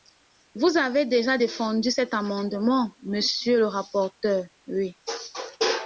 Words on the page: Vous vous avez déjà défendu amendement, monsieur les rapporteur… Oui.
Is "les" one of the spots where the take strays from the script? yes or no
yes